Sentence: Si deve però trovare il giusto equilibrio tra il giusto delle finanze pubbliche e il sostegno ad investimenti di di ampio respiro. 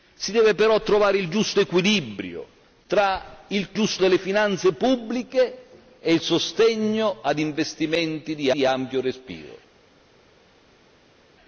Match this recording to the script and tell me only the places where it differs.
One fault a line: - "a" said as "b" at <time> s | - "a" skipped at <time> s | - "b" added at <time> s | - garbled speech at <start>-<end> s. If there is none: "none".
none